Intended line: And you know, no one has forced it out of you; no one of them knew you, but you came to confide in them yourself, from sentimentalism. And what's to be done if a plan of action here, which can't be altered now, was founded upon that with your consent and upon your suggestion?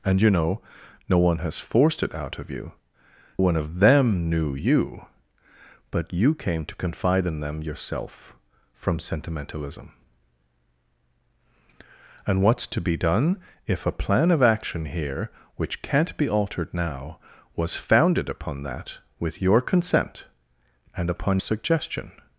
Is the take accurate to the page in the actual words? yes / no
no